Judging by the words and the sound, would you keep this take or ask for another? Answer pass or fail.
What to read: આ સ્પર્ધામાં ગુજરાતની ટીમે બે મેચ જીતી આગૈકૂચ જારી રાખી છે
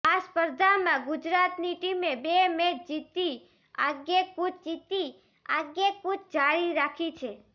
fail